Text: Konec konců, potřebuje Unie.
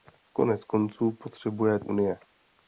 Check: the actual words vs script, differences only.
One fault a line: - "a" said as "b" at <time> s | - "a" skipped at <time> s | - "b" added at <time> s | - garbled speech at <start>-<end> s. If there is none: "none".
none